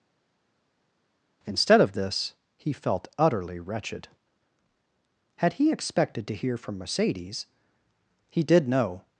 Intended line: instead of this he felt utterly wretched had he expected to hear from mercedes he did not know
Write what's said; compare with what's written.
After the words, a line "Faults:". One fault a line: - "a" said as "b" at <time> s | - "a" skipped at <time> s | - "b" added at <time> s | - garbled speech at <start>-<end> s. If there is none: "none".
instead of this he felt utterly wretched had he expected to hear from mercedes he did know
Faults:
- "not" skipped at 8.7 s